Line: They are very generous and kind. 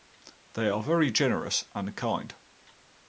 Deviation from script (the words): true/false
false